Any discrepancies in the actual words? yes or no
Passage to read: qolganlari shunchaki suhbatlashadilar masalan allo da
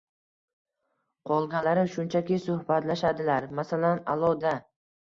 no